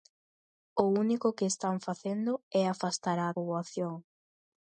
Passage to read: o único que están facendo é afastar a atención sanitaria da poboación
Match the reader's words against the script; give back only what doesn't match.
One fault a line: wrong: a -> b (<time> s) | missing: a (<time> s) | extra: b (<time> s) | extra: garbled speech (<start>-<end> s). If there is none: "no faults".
missing: atención sanitaria da (3.3 s)